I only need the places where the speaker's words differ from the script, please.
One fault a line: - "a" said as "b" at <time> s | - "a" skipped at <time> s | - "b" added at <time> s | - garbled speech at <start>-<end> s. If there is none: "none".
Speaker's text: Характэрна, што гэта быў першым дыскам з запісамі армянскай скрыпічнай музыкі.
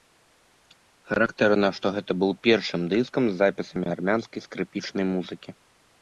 none